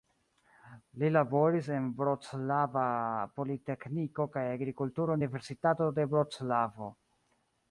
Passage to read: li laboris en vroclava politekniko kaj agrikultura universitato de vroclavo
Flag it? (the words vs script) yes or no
no